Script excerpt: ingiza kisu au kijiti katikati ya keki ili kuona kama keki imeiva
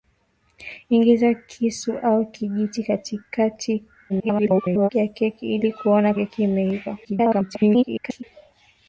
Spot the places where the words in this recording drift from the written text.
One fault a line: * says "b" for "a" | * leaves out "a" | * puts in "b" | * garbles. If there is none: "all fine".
* garbles
* leaves out "kama"
* garbles